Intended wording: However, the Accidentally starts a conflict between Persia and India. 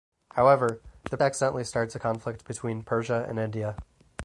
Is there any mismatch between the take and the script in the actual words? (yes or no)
no